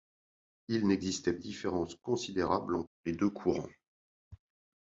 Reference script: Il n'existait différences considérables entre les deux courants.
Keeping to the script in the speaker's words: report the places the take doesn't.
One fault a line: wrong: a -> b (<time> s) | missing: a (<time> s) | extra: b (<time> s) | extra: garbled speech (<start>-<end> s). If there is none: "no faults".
no faults